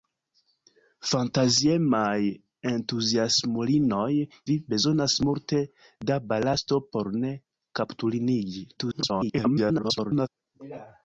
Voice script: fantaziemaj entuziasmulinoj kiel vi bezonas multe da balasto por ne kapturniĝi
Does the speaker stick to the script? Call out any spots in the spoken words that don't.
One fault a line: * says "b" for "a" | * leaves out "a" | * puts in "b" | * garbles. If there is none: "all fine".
* leaves out "kiel"
* garbles